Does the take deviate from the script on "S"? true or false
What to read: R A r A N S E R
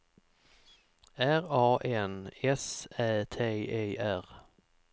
true